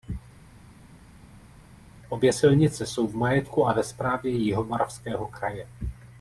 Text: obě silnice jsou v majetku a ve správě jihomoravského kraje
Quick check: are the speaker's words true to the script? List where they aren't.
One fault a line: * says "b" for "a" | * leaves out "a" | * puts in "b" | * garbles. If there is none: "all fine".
all fine